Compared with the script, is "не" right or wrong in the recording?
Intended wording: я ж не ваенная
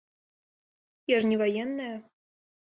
right